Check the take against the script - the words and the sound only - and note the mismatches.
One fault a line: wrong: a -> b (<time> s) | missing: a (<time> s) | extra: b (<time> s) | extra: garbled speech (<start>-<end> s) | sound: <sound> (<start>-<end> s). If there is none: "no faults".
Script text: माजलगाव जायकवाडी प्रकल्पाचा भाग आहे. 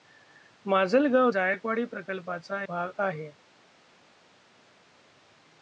no faults